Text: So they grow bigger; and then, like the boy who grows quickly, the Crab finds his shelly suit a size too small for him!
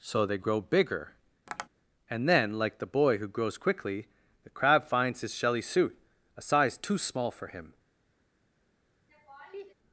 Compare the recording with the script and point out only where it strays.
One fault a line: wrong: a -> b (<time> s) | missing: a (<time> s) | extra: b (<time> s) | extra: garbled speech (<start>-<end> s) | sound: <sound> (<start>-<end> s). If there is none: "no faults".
sound: tap (1.5-1.7 s)
sound: laugh (9.1-9.7 s)